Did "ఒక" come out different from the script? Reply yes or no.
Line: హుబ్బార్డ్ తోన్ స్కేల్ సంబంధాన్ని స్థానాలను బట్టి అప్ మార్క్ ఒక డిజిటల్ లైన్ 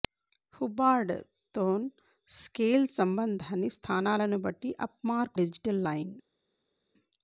yes